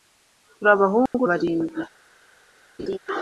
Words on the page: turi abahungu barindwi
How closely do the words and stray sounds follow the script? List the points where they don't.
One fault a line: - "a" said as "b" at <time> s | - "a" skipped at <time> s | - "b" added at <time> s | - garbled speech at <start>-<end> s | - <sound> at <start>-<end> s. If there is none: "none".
- dropout at 1.1-1.1 s
- laugh at 2.8-3.0 s